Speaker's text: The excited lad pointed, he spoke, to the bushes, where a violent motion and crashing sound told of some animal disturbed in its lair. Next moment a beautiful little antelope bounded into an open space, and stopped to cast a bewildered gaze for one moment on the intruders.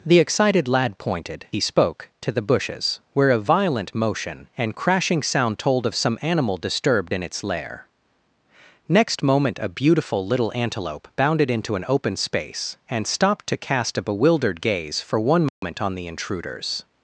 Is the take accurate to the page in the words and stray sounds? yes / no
no